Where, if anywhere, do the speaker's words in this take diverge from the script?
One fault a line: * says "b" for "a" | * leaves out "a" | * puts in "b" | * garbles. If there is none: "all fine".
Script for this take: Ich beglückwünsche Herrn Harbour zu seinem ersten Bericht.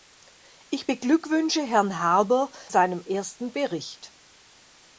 * leaves out "zu"